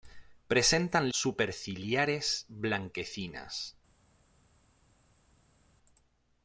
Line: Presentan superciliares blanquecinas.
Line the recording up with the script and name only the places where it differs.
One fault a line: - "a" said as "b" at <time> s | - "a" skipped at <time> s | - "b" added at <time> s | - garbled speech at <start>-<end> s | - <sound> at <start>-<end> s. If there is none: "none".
none